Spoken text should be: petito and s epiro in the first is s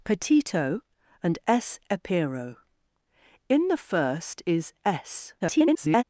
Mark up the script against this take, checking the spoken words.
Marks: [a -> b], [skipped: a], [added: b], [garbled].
petito and s epiro in the first is s [garbled]